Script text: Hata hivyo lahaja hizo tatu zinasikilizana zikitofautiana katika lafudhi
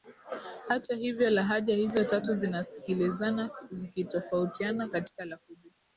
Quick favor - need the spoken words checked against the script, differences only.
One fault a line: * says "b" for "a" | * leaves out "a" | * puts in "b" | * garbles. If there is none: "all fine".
all fine